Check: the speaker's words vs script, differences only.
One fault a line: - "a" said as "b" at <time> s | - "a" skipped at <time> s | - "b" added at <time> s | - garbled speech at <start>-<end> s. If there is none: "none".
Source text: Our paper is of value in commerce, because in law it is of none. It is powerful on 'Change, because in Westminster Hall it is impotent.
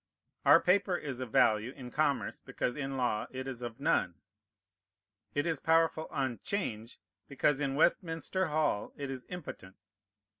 none